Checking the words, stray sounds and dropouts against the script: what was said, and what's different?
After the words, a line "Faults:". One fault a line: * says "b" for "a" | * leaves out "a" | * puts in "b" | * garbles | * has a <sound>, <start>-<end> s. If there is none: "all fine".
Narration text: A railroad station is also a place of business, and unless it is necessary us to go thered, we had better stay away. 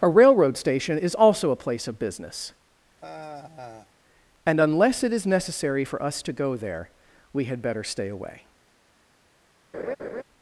A railroad station is also a place of business, and unless it is necessary for us to go there, we had better stay away.
Faults:
* has a sigh, 3.0-3.9 s
* puts in "for"
* says "there" for "thered"
* has a laugh, 9.7-10.2 s